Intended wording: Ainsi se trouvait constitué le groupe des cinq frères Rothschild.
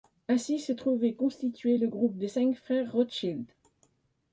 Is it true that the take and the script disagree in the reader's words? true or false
false